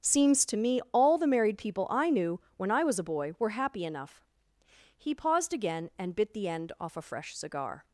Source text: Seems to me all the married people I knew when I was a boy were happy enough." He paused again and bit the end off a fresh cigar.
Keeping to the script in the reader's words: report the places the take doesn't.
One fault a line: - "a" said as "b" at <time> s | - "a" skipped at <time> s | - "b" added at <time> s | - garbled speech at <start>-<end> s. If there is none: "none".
none